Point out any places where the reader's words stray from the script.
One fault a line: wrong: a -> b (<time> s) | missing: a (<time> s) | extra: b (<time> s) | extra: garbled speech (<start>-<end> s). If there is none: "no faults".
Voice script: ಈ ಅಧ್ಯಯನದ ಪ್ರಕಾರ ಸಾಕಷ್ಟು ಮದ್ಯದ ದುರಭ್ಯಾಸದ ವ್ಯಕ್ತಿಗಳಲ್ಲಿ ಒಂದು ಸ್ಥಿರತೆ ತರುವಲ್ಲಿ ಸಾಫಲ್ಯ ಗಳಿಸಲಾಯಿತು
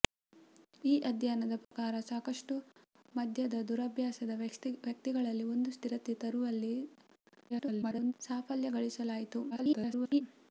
extra: garbled speech (7.5-8.1 s)
extra: garbled speech (9.5-10.2 s)